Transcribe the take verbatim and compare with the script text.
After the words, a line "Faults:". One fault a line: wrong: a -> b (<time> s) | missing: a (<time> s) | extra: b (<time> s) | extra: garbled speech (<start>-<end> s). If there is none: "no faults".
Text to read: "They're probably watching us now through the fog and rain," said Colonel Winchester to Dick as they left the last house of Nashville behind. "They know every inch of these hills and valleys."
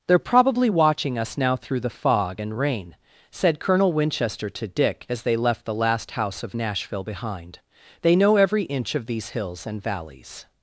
"They're probably watching us now through the fog and rain," said Colonel Winchester to Dick as they left the last house of Nashville behind. "They know every inch of these hills and valleys."
Faults:
no faults